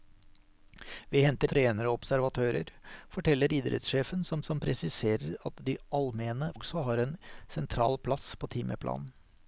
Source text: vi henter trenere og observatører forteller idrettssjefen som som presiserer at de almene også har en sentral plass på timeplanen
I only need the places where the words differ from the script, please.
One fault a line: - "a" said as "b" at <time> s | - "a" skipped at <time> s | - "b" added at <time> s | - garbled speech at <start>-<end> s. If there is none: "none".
none